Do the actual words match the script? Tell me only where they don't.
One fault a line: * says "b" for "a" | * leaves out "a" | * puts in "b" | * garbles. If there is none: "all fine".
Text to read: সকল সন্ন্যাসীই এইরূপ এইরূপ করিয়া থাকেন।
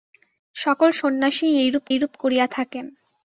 all fine